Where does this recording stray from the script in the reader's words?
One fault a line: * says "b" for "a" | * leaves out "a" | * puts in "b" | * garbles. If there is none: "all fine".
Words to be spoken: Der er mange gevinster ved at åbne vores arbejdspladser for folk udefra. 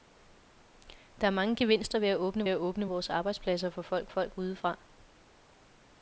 * puts in "at åbne"
* puts in "folk"